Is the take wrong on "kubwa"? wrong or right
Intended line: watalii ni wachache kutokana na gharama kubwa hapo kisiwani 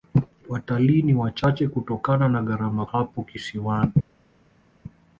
wrong